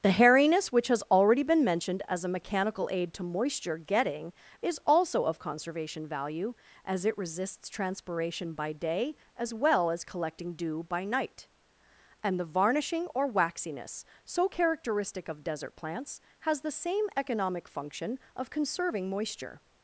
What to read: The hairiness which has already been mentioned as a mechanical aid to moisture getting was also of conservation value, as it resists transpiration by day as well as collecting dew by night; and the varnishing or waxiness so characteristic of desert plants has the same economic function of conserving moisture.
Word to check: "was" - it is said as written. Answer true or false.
false